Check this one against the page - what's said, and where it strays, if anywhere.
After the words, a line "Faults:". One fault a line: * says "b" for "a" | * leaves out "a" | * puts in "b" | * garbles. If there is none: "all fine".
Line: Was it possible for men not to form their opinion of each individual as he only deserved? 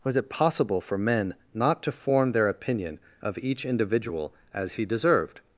Was it possible for men not to form their opinion of each individual as he deserved?
Faults:
* leaves out "only"